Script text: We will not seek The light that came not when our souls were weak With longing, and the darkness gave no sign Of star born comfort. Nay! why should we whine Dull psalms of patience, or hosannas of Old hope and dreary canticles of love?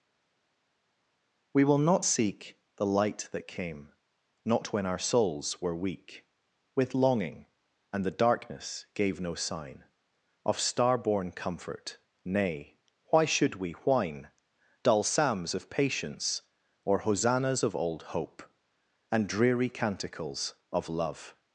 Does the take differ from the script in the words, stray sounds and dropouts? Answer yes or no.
no